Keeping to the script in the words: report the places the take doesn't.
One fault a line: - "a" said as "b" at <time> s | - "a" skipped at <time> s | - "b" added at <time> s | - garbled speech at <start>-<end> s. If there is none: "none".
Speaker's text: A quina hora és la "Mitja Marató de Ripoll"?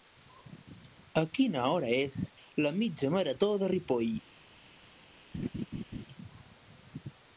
none